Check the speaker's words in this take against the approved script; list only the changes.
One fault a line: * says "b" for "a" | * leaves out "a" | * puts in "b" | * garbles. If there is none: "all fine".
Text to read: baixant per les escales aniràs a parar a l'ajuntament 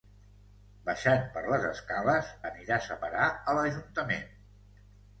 all fine